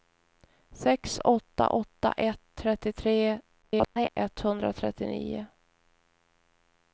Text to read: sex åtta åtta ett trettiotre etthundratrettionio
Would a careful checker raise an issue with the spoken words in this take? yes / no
yes